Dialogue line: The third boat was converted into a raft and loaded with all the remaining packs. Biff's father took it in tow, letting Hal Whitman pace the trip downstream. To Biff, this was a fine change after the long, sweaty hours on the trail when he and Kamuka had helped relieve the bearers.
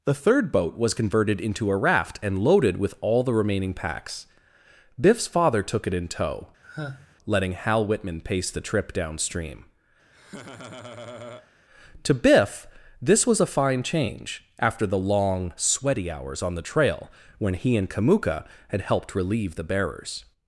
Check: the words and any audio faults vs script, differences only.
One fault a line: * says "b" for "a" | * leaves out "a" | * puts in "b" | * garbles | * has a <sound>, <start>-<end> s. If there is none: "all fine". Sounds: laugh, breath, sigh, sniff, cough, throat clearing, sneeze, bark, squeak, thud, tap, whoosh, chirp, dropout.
* has a sigh, 6.6-7.2 s
* has a laugh, 10.1-11.5 s